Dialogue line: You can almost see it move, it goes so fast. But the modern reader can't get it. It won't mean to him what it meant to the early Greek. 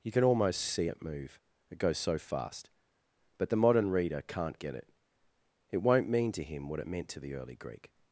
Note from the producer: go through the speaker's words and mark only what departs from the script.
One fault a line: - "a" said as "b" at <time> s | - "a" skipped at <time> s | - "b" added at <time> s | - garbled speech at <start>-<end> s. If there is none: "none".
none